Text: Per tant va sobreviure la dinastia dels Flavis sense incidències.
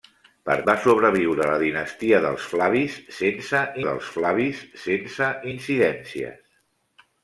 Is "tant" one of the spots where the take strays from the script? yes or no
yes